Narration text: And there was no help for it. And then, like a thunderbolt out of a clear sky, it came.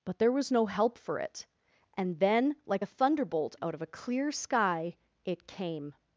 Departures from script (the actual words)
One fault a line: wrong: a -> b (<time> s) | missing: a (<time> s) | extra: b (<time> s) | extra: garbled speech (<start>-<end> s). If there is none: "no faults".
wrong: And -> But (0.1 s)